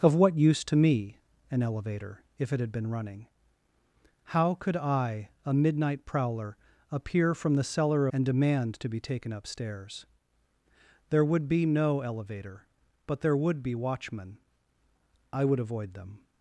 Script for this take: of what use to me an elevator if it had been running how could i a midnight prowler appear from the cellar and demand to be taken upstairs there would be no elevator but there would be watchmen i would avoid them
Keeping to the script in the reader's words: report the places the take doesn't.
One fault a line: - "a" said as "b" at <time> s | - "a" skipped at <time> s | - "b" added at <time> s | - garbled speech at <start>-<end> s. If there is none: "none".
none